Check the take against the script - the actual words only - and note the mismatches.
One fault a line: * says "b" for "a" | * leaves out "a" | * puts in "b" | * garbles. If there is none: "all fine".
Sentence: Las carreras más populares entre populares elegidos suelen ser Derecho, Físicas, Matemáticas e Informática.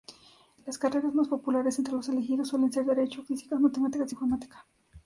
* says "los" for "populares"